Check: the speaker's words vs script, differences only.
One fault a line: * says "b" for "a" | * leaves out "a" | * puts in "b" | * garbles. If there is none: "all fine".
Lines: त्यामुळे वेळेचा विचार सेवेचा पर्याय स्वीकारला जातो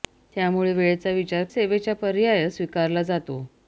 all fine